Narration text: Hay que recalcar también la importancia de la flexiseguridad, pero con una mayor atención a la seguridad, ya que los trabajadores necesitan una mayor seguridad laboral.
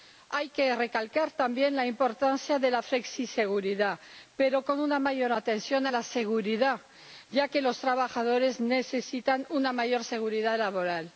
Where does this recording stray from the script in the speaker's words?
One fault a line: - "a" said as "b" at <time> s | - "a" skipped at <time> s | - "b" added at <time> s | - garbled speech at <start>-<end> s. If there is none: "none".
none